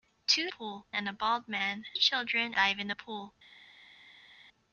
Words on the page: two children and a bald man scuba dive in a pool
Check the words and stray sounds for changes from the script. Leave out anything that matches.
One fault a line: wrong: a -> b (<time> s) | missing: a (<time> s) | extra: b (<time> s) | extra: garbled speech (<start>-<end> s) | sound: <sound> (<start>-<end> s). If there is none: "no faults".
wrong: children -> pool (0.5 s)
wrong: scuba -> children (1.9 s)